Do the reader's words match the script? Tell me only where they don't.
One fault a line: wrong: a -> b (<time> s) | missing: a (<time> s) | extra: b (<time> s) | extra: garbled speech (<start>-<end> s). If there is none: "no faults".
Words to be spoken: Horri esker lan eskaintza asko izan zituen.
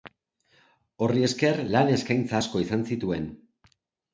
no faults